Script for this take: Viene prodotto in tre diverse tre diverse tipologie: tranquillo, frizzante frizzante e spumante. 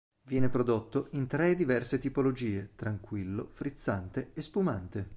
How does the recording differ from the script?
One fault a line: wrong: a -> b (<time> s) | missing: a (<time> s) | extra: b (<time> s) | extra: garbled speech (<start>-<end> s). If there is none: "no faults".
missing: tre diverse (2.0 s)
missing: frizzante (4.3 s)